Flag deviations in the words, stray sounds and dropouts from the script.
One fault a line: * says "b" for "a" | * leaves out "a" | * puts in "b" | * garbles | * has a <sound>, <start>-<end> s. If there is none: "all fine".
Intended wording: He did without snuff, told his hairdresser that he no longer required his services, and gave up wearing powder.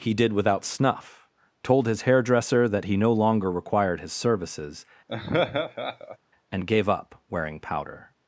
* has a laugh, 5.1-6.2 s